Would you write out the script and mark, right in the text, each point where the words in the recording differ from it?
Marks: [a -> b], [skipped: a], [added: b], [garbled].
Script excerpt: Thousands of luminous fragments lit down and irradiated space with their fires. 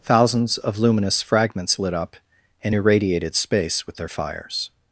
Thousands of luminous fragments lit [down -> up] and irradiated space with their fires.